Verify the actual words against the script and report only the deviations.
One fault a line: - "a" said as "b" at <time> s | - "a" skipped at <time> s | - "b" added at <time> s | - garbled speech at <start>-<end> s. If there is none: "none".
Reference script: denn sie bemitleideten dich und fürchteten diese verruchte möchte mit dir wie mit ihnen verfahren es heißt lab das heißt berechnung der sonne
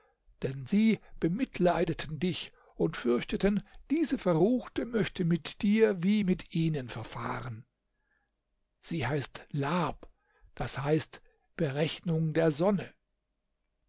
- "es" said as "sie" at 8.8 s